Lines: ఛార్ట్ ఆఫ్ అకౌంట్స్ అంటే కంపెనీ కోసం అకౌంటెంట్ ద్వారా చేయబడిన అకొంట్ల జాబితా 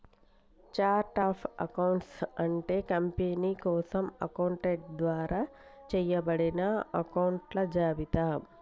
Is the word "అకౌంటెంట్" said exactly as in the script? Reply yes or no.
yes